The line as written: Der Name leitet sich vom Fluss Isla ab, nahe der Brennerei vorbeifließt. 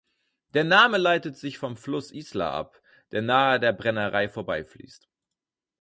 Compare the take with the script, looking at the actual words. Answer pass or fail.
fail